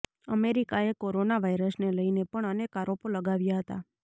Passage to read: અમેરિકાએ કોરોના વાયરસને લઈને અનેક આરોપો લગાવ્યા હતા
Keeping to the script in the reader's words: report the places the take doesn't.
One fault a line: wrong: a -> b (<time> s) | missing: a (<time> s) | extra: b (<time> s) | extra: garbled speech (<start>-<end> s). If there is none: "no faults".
extra: પણ (2.3 s)